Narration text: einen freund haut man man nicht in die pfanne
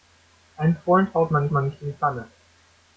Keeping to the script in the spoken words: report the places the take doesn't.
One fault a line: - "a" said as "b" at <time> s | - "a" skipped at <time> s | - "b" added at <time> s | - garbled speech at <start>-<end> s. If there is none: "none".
none